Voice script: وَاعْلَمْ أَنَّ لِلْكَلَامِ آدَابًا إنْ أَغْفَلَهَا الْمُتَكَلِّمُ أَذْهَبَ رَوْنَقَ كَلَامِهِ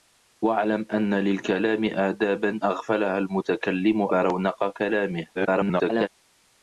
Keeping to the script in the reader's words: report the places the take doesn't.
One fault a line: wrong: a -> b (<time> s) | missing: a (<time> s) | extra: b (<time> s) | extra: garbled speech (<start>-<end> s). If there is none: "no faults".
missing: إنْ (2.6 s)
missing: أَذْهَبَ (4.0 s)
extra: garbled speech (5.3-6.1 s)